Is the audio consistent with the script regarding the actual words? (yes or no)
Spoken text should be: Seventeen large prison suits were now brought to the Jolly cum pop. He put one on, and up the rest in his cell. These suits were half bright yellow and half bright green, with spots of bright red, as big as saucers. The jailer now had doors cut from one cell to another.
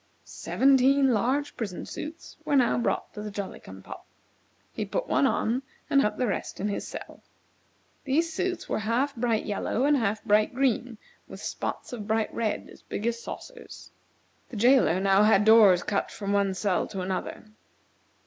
yes